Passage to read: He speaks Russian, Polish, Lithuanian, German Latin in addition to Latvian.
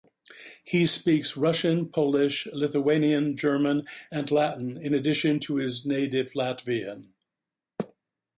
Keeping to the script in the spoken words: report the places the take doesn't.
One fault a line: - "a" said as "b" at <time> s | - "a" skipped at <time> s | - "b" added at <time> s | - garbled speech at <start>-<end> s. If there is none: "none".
- "and" added at 4.1 s
- "his native" added at 5.6 s